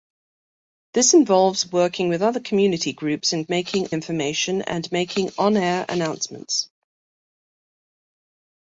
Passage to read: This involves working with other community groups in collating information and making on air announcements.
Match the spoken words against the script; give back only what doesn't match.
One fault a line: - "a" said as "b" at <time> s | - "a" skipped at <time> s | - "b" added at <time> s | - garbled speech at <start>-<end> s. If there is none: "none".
- "collating" said as "making" at 3.5 s